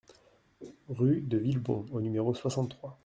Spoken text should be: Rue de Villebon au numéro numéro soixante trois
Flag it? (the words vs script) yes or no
yes